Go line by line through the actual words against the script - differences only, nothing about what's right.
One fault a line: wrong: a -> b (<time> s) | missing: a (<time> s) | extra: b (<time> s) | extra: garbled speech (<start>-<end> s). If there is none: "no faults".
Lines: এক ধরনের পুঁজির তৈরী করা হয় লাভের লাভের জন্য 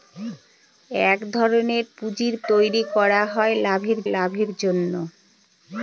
no faults